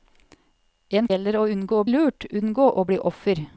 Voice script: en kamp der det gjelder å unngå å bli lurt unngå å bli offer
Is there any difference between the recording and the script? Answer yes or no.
yes